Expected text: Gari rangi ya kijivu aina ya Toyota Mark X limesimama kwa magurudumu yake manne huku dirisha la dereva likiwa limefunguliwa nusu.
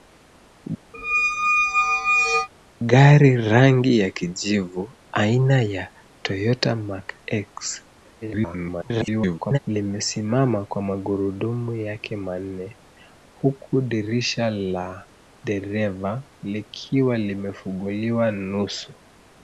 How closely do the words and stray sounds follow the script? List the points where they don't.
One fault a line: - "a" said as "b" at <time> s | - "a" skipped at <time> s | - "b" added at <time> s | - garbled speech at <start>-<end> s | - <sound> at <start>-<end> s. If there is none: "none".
- squeak at 0.9-2.5 s
- garbled speech at 8.2-9.6 s